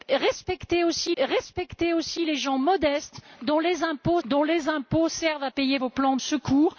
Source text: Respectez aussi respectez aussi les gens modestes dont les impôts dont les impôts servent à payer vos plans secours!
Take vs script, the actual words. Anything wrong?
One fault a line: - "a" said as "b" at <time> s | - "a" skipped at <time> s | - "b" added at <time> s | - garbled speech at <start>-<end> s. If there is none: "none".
none